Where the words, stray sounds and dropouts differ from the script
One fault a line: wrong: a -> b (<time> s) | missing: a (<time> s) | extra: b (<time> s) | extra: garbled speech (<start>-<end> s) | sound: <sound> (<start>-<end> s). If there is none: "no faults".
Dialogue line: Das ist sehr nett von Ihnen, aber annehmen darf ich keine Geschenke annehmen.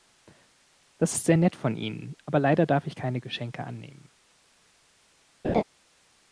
wrong: annehmen -> leider (2.4 s)
sound: laugh (5.4-5.6 s)